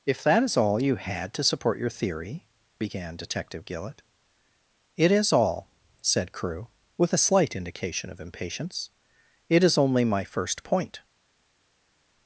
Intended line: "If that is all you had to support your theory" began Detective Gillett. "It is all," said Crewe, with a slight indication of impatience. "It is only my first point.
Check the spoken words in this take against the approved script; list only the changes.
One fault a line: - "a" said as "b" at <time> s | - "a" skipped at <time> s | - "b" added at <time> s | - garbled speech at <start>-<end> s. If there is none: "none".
none